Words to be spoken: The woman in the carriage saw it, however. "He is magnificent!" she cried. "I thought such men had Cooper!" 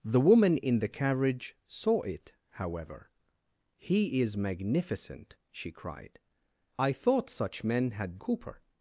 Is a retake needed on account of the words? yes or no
no